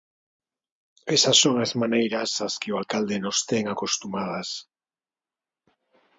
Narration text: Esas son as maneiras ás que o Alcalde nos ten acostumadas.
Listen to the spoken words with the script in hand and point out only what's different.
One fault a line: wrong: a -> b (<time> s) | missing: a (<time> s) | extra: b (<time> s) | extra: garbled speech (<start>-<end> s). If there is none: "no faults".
no faults